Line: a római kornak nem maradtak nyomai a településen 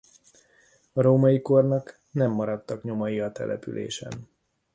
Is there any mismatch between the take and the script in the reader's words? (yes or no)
no